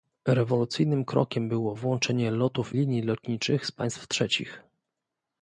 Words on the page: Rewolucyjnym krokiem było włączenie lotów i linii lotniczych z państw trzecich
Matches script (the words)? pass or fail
fail